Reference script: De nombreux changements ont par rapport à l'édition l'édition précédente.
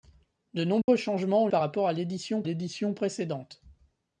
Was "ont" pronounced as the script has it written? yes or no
yes